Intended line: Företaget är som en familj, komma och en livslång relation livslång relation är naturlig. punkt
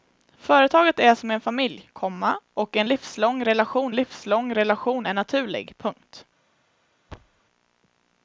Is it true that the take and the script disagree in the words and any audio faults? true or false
true